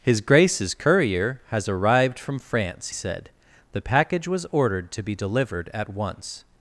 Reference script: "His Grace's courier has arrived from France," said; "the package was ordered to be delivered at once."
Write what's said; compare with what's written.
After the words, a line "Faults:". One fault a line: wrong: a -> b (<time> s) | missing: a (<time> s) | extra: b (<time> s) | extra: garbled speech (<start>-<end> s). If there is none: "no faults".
"His Grace's courier has arrived from France," said; "the package was ordered to be delivered at once."
Faults:
no faults